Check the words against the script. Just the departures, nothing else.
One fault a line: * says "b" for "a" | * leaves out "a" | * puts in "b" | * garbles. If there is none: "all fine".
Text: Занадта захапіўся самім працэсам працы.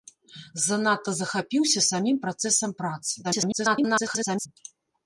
* garbles